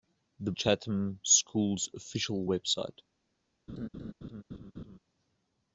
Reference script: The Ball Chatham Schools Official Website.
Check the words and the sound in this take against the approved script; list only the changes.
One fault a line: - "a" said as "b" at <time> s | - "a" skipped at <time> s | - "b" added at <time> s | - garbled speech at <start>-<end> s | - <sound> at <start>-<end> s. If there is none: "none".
- "Ball" skipped at 0.5 s
- laugh at 3.7-5.0 s